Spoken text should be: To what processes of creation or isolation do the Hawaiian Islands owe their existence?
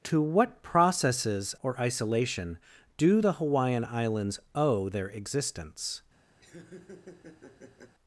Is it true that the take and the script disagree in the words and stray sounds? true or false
true